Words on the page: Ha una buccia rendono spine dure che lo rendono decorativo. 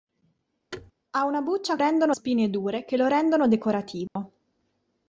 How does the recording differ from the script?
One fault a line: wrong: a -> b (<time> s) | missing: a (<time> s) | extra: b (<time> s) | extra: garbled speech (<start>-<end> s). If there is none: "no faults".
no faults